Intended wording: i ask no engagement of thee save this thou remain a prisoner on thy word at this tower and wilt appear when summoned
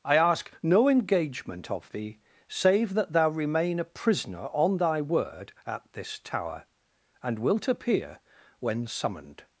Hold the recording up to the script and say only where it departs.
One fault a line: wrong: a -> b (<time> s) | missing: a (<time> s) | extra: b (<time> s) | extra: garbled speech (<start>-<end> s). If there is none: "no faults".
wrong: this -> that (3.0 s)